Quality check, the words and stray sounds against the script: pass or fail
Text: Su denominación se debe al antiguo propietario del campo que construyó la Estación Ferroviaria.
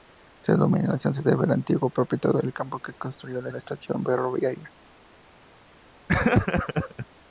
fail